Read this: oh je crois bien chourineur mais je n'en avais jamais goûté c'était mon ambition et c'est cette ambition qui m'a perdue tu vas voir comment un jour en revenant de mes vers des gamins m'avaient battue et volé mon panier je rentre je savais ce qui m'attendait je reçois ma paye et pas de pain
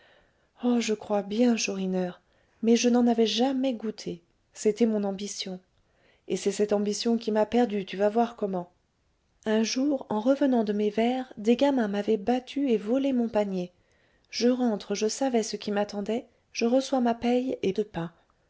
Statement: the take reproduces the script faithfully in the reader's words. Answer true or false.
false